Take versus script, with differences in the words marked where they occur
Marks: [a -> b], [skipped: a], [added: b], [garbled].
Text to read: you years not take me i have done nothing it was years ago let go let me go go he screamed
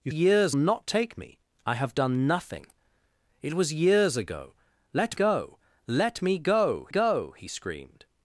you years not take me i have done nothing it was years ago let go let me go go he screamed